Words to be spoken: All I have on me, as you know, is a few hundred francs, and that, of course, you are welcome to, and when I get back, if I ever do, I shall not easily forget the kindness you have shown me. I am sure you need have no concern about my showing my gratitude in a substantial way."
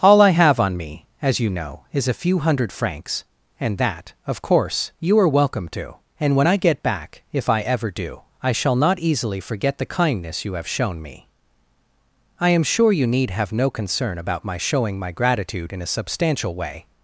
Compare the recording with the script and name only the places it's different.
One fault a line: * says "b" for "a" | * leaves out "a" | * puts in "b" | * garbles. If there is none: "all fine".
all fine